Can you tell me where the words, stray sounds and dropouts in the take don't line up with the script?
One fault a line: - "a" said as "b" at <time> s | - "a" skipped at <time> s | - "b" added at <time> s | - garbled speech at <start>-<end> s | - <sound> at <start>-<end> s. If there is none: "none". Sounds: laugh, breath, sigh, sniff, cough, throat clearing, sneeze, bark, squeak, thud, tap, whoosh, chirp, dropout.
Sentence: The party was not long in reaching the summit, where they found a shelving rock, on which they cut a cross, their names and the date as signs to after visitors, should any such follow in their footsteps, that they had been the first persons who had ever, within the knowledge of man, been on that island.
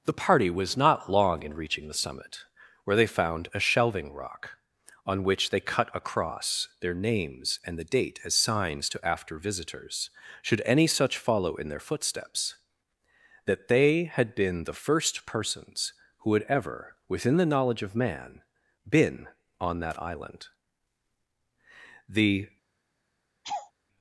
- "The" added at 22.1 s
- laugh at 23.4-23.7 s